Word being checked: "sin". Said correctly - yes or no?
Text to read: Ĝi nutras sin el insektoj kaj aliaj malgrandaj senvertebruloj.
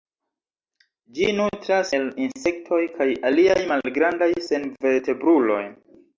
no